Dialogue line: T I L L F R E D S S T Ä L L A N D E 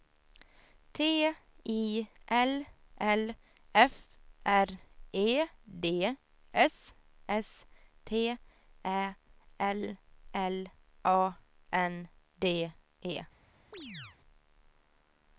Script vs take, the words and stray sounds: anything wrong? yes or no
yes